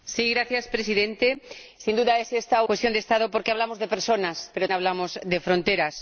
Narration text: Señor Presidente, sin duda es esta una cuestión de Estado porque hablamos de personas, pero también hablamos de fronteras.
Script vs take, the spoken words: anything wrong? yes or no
yes